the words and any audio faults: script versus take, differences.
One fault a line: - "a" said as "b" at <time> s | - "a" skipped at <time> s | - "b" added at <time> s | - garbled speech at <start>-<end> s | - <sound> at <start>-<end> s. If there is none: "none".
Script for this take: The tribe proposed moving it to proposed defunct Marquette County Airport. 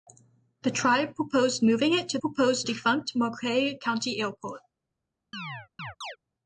- chirp at 5.3-6.2 s